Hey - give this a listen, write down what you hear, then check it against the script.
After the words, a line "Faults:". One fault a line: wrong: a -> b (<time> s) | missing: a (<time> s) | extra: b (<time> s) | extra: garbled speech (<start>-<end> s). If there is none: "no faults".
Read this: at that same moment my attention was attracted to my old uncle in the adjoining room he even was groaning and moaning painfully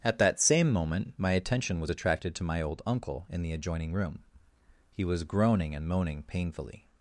at that same moment my attention was attracted to my old uncle in the adjoining room he was groaning and moaning painfully
Faults:
missing: even (5.0 s)